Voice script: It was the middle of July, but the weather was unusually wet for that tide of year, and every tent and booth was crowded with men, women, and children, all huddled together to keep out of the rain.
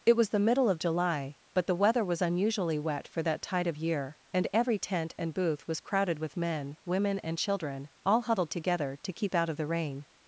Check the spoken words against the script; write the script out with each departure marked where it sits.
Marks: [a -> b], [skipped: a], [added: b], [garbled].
It was the middle of July, but the weather was unusually wet for that tide of year, and every tent and booth was crowded with men, women, and children, all huddled together to keep out of the rain.